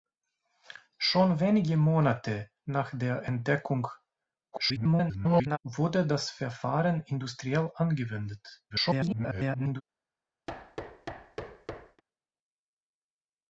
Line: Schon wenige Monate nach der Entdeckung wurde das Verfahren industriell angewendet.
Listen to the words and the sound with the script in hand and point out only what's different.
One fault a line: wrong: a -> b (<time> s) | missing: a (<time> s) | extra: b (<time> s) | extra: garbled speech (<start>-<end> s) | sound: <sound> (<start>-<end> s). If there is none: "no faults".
extra: garbled speech (4.5-5.6 s)
extra: garbled speech (8.7-9.8 s)
sound: thud (10.5-12.0 s)